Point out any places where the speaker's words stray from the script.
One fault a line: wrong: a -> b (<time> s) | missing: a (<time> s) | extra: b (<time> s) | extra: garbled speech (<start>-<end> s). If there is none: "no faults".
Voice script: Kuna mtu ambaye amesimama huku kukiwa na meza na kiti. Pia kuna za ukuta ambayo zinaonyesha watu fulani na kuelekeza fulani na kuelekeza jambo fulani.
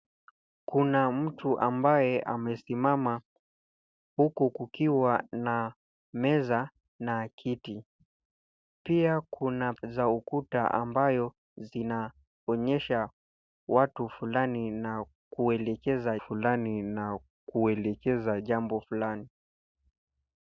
no faults